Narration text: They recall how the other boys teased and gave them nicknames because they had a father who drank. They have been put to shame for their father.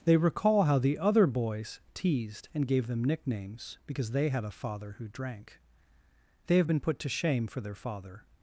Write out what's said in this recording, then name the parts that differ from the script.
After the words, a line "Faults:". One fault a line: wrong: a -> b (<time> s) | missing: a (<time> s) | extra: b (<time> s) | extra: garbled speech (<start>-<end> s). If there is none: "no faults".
They recall how the other boys teased and gave them nicknames because they had a father who drank. They have been put to shame for their father.
Faults:
no faults